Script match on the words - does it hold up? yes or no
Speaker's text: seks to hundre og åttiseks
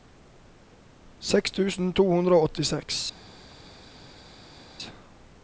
no